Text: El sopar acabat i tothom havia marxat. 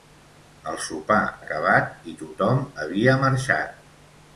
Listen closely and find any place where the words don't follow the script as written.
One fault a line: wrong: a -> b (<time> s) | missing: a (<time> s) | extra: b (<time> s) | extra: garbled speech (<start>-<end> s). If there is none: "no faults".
no faults